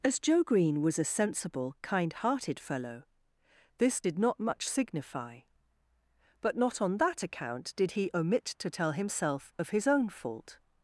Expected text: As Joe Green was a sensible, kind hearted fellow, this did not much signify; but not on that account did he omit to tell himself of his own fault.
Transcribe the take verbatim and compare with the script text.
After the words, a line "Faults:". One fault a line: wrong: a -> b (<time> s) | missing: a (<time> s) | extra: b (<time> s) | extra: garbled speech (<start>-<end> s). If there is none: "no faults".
As Joe Green was a sensible, kind hearted fellow, this did not much signify; but not on that account did he omit to tell himself of his own fault.
Faults:
no faults